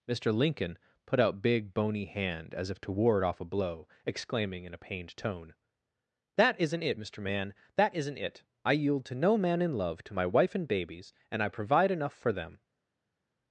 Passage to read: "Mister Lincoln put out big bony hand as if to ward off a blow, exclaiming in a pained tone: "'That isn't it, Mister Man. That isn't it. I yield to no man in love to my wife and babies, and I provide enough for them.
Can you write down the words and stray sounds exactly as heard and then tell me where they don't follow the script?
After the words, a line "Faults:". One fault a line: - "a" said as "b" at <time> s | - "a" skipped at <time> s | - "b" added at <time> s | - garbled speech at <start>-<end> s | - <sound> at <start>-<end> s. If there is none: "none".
"Mister Lincoln put out big bony hand as if to ward off a blow, exclaiming in a pained tone: "'That isn't it, Mister Man. That isn't it. I yield to no man in love to my wife and babies, and I provide enough for them.
Faults:
none